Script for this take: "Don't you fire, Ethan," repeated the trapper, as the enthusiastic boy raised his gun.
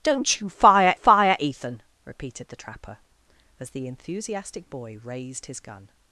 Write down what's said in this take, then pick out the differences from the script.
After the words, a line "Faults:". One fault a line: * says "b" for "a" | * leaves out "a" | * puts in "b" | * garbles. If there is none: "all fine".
"Don't you fire fire, Ethan," repeated the trapper, as the enthusiastic boy raised his gun.
Faults:
* puts in "fire"